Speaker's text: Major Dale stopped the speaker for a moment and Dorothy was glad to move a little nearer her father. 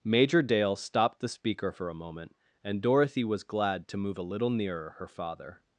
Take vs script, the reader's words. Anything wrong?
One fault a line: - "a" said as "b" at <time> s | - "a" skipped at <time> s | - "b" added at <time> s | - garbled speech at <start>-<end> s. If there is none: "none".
none